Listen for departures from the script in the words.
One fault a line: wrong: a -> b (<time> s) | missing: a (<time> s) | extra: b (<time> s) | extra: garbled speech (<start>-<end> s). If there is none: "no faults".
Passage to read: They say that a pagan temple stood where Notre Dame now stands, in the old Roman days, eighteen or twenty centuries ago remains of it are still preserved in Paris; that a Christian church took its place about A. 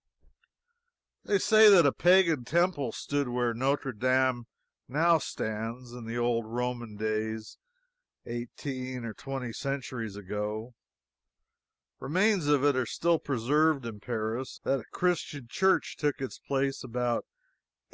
no faults